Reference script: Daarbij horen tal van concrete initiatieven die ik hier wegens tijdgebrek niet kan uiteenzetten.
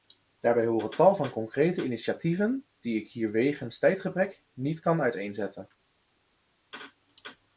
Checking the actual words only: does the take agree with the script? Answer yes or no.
yes